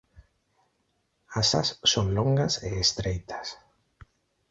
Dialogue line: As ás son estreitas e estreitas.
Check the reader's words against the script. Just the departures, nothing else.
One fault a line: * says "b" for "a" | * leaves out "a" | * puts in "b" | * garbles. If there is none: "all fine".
* says "longas" for "estreitas"